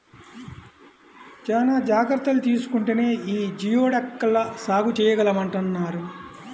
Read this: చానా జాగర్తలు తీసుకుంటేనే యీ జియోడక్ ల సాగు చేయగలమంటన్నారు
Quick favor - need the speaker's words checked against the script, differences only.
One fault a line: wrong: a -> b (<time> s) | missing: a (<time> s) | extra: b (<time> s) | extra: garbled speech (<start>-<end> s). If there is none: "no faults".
no faults